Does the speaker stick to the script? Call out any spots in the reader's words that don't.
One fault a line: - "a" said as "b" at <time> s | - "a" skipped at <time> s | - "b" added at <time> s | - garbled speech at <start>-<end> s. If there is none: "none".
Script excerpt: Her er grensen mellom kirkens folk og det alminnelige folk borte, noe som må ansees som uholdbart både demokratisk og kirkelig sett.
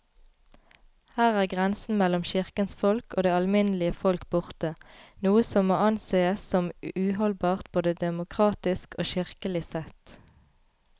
none